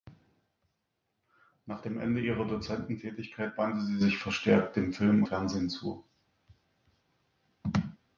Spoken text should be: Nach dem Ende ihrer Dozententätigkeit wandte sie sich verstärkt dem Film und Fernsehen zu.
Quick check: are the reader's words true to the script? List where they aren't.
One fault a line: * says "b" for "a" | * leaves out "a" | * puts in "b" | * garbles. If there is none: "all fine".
* leaves out "und"